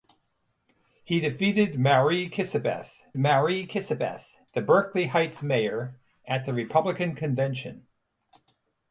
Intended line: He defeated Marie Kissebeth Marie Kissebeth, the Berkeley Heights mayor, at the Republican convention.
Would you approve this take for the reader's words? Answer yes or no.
yes